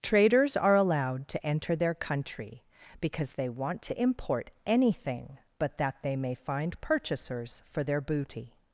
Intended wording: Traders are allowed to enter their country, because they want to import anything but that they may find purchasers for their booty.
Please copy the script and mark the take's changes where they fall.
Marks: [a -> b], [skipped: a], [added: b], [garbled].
Traders are allowed to enter their country, because they want to import anything but that they may find purchasers for their booty.